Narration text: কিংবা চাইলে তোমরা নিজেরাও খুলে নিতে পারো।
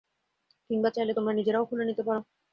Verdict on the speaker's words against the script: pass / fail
pass